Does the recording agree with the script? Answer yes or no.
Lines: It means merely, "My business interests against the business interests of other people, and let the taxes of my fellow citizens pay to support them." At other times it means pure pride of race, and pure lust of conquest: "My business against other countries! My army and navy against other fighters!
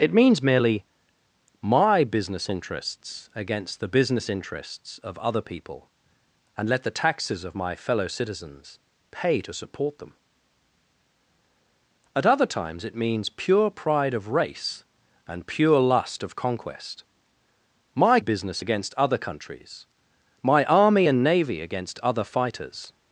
yes